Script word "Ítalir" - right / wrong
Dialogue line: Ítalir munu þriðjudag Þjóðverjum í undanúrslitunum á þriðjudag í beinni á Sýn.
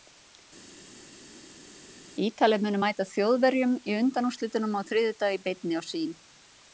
right